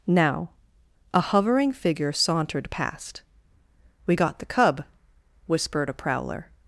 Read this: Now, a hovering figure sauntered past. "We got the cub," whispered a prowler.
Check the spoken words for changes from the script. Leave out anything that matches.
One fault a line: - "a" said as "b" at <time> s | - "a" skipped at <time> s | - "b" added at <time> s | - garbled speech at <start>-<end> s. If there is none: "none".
none